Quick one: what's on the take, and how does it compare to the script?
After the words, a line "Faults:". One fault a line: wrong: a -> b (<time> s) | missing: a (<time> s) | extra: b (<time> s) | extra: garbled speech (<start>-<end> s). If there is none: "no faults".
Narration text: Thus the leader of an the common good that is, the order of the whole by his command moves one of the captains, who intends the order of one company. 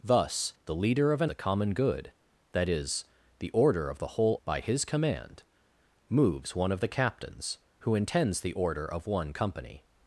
Thus the leader of an the common good that is, the order of the whole by his command moves one of the captains, who intends the order of one company.
Faults:
no faults